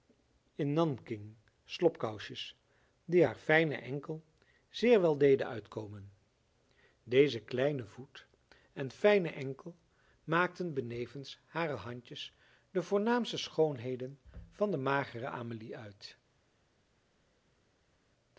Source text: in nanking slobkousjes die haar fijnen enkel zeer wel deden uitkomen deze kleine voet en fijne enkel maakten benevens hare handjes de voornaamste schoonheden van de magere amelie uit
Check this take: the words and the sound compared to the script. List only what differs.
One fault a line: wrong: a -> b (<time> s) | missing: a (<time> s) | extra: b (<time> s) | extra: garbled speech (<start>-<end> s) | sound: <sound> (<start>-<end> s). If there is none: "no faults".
no faults